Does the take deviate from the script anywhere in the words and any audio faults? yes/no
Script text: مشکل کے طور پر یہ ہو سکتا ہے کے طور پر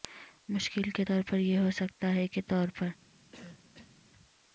yes